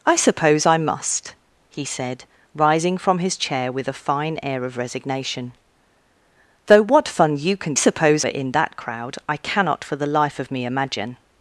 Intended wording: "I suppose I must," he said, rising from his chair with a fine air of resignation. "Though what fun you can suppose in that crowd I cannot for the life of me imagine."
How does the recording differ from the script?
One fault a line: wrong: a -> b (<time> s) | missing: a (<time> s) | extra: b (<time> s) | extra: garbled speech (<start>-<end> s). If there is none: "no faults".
no faults